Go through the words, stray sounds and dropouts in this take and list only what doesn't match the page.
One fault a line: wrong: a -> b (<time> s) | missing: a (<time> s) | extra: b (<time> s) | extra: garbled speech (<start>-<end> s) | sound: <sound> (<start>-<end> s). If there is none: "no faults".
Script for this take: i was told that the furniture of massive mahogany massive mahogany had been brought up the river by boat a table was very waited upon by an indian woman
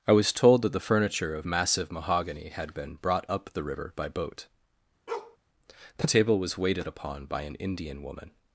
missing: massive mahogany (2.5 s)
sound: bark (5.1-5.4 s)
wrong: a -> the (6.0 s)
missing: very (6.6 s)